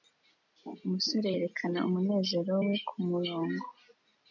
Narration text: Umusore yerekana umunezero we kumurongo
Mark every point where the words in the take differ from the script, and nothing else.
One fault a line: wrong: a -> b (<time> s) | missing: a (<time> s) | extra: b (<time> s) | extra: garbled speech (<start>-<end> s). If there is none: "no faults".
no faults